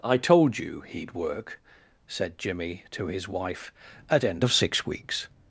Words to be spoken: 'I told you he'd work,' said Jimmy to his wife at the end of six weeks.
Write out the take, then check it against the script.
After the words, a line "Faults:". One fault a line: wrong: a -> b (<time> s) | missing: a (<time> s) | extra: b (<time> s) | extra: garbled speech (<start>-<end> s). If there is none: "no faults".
'I told you he'd work,' said Jimmy to his wife at end of six weeks.
Faults:
missing: the (4.2 s)